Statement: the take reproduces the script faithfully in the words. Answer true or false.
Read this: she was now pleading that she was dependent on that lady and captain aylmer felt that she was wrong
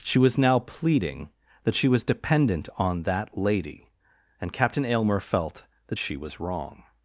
true